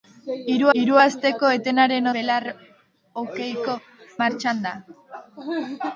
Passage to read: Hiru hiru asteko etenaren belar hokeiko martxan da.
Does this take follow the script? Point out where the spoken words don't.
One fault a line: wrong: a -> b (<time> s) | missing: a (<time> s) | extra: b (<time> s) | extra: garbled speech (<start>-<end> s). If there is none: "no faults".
no faults